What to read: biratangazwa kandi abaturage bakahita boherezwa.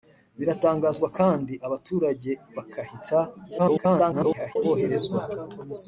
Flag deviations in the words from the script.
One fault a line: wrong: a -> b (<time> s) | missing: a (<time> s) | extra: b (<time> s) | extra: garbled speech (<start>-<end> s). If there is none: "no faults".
extra: garbled speech (3.6-4.6 s)